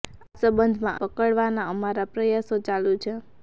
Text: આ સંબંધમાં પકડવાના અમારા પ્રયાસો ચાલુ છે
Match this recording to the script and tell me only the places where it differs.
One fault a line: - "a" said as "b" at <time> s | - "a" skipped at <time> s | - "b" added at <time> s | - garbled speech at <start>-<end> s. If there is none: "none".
none